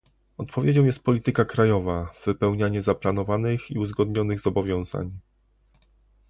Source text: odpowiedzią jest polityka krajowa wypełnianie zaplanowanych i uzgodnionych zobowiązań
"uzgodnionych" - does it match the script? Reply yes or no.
yes